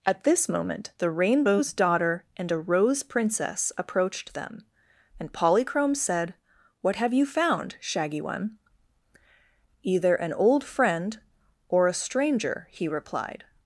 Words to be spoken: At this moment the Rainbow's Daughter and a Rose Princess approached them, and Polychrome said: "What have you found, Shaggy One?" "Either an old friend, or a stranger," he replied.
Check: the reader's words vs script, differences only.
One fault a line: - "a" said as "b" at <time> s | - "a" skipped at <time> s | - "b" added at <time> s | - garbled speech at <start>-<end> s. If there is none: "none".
none